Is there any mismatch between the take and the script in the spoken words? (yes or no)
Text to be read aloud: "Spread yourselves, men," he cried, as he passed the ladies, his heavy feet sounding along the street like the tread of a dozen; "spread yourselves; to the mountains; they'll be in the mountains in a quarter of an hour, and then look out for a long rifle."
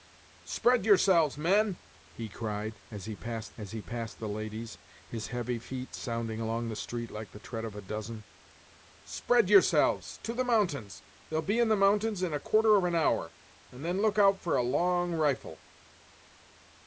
yes